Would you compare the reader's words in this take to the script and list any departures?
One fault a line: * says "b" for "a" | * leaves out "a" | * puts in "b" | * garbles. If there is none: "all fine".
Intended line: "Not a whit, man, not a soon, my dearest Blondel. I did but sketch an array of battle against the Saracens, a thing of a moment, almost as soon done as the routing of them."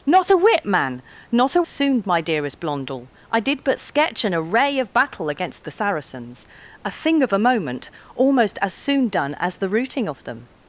all fine